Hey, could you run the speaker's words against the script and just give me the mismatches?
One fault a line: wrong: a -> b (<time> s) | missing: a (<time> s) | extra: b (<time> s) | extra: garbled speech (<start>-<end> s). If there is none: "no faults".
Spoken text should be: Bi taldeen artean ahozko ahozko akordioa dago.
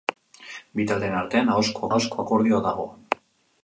no faults